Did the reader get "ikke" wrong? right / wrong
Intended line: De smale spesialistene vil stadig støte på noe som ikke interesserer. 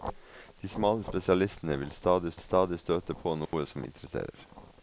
wrong